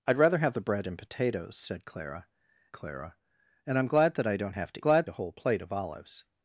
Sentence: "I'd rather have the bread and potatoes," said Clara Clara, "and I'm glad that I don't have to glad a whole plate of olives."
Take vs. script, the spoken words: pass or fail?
pass